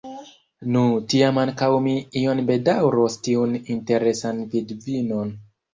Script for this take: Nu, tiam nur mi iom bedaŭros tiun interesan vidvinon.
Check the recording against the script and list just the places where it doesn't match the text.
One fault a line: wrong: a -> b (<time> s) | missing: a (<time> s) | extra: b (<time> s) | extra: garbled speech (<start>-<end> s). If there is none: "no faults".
wrong: nur -> ankaŭ (1.4 s)